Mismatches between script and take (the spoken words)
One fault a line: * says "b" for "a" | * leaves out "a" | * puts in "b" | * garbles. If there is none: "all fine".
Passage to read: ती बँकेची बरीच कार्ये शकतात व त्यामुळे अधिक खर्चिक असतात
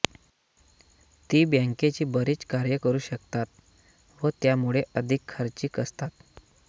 * puts in "करू"